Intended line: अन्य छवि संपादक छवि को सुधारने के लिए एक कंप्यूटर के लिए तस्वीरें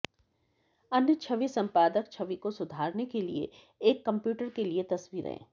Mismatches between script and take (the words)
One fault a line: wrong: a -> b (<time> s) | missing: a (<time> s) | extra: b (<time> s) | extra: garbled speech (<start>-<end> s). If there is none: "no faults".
no faults